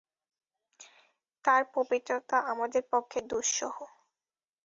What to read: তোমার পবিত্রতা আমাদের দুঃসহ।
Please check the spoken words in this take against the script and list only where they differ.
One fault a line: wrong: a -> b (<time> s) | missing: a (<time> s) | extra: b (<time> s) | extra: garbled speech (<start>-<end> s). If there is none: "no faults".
wrong: তোমার -> তার (1.4 s)
extra: পক্ষে (2.9 s)